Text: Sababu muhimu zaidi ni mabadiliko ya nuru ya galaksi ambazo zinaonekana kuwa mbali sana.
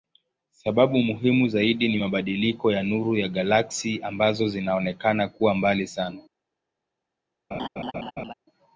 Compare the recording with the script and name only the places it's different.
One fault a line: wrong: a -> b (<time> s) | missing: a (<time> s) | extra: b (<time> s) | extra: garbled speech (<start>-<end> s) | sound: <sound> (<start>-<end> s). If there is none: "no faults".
sound: laugh (7.5-8.3 s)